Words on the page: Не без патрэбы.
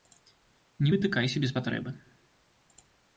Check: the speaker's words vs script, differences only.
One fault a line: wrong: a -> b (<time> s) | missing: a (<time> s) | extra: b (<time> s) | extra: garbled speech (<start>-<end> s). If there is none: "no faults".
extra: вытыкайся (0.9 s)